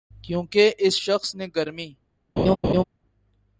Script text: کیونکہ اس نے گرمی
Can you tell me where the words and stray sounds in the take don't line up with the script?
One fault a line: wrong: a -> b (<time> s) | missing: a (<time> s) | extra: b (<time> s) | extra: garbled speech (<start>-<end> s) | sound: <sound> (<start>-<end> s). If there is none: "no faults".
extra: شخص (1.0 s)
sound: laugh (2.4-2.8 s)